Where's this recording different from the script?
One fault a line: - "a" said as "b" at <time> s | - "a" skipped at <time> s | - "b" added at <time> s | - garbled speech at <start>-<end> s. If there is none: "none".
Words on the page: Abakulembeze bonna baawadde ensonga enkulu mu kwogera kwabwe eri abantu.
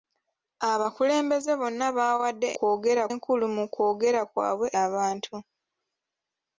- "ensonga" said as "kwogera" at 2.6 s
- "eri" skipped at 4.7 s